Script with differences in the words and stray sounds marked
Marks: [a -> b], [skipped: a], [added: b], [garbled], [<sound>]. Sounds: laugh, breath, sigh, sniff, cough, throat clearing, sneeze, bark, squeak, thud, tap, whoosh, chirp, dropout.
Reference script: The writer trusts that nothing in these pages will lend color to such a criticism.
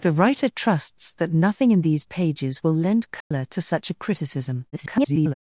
The writer trusts that nothing in these pages will lend color [dropout] to such a criticism. [garbled]